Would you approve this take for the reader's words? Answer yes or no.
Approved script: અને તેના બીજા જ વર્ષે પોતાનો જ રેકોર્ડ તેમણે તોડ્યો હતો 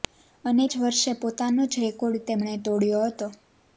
no